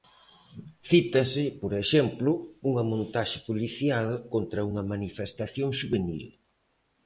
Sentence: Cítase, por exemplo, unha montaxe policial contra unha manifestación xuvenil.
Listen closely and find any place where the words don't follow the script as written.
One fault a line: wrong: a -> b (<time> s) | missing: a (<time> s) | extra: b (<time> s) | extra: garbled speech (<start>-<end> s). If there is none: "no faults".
no faults